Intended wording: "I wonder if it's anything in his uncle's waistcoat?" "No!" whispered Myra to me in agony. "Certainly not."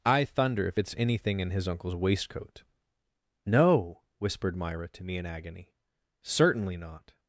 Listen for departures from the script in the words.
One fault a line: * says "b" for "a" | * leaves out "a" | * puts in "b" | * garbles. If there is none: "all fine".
* says "thunder" for "wonder"